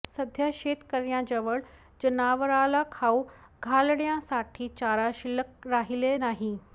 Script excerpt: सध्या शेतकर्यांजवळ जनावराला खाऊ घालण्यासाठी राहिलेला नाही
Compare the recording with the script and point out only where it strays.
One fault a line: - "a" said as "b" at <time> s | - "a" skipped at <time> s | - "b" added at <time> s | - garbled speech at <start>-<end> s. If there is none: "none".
- "चारा शिल्लक" added at 4.8 s